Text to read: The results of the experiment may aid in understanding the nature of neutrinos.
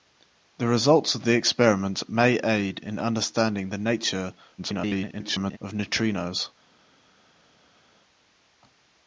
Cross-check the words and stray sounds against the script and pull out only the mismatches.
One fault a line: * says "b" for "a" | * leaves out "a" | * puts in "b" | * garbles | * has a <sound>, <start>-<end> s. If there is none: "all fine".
* garbles